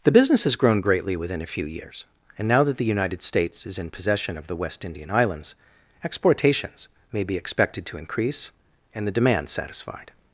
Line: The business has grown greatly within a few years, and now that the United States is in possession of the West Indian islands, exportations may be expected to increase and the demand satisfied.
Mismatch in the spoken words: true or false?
false